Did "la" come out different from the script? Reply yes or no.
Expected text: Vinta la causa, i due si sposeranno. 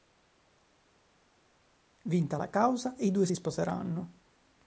no